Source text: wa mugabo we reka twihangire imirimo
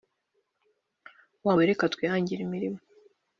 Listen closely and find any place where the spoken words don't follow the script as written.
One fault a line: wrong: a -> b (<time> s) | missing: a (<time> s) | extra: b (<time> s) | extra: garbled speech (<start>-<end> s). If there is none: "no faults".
missing: mugabo (1.6 s)